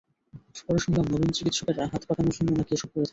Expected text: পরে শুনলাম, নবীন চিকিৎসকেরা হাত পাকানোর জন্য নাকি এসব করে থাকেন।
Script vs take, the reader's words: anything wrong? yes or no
no